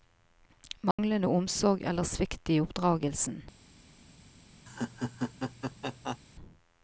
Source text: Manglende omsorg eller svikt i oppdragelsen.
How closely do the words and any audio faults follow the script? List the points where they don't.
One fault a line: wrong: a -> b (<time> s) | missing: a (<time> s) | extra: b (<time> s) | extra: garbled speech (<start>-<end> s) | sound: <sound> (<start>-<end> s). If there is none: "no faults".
sound: dropout (0.9-1.0 s)
sound: laugh (4.7-6.2 s)